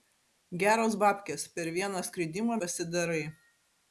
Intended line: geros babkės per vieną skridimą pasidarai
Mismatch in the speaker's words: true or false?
false